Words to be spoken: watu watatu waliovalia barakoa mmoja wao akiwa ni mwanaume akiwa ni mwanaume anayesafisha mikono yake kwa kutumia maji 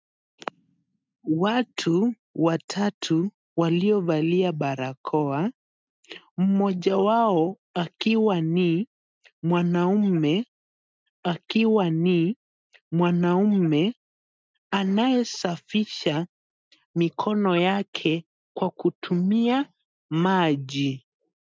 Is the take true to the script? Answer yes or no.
yes